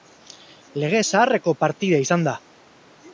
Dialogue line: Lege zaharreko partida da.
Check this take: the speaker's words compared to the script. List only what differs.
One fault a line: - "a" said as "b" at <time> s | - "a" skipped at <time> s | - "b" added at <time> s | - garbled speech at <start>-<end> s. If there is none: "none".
- "izan" added at 2.0 s